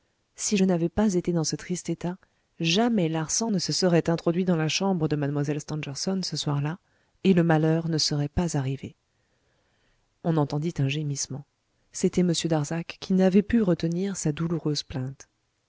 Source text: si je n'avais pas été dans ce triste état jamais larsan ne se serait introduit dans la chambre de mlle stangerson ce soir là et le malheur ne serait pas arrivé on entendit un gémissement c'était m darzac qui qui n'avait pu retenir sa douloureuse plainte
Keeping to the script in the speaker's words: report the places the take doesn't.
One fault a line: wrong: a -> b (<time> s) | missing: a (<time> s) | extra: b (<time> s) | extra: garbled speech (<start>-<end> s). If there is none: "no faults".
missing: qui (13.1 s)